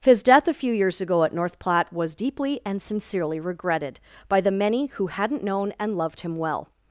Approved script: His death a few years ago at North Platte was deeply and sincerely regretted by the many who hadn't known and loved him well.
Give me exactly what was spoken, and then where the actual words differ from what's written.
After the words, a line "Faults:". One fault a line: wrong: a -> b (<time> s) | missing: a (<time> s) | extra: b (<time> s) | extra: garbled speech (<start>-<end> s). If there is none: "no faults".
His death a few years ago at North Platte was deeply and sincerely regretted by the many who hadn't known and loved him well.
Faults:
no faults